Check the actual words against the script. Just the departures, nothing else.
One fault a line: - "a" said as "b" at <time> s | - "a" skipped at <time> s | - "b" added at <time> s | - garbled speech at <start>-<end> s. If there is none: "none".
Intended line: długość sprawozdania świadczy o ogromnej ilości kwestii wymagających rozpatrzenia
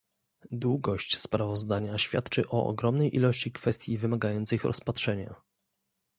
none